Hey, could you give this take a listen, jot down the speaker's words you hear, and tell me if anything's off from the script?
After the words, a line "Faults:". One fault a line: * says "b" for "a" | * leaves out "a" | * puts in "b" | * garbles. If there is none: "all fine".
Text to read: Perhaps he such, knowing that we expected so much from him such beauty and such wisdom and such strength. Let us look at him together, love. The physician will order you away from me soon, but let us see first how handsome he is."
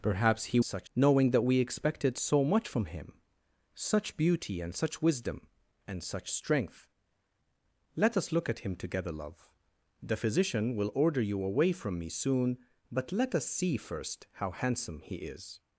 Perhaps he such, knowing that we expected so much from him such beauty and such wisdom and such strength. Let us look at him together, love. The physician will order you away from me soon, but let us see first how handsome he is."
Faults:
all fine